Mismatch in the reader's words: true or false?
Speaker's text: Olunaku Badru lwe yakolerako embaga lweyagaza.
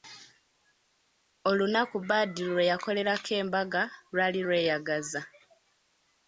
true